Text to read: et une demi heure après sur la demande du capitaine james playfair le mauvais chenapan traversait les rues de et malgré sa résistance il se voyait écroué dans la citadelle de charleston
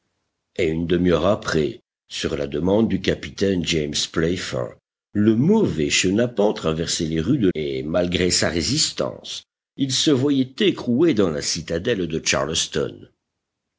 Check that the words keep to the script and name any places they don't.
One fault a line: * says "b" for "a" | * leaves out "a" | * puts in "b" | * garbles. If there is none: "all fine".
all fine